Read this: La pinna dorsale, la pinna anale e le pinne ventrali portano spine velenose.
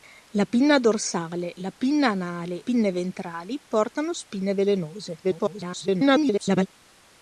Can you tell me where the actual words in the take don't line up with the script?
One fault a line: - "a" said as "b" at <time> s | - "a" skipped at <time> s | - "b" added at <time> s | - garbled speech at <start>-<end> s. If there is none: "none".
- "e le" skipped at 2.6 s
- garbled speech at 5.2-6.7 s